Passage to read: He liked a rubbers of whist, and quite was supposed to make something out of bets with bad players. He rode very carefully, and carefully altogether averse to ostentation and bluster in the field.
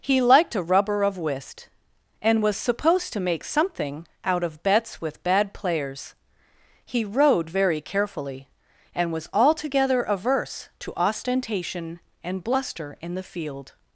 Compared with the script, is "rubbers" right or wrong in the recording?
wrong